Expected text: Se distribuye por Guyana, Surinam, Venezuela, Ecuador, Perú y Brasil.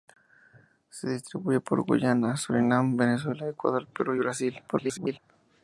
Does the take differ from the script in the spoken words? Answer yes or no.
yes